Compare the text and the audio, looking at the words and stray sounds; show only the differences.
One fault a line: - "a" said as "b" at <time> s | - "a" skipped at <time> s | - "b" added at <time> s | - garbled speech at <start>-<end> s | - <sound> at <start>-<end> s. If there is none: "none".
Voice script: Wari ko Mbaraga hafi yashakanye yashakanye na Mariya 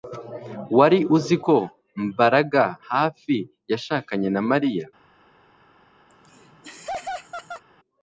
- "uzi" added at 1.2 s
- "yashakanye" skipped at 4.3 s
- laugh at 6.1-7.6 s